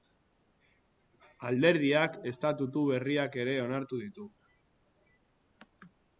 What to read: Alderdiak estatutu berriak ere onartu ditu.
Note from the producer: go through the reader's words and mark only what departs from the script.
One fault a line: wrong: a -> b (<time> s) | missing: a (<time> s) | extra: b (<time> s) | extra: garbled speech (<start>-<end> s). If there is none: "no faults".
no faults